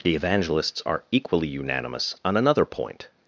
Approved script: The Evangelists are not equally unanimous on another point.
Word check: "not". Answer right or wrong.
wrong